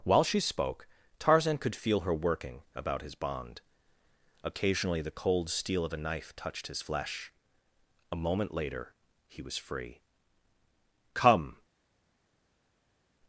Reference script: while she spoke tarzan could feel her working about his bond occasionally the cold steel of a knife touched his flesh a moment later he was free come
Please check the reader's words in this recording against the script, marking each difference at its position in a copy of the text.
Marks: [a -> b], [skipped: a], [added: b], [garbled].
while she spoke tarzan could feel her working about his bond occasionally the cold steel of a knife touched his flesh a moment later he was free come